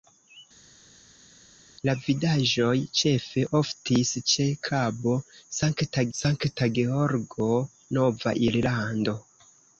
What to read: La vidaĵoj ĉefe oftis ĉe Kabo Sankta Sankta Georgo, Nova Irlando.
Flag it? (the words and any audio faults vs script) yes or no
no